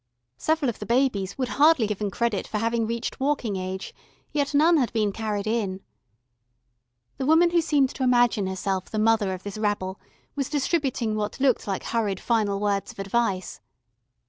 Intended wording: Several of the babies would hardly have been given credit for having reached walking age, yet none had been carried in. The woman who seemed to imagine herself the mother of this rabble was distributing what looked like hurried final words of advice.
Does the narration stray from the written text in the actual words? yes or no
yes